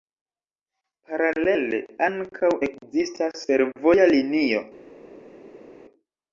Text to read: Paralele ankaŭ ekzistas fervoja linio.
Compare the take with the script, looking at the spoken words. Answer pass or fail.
pass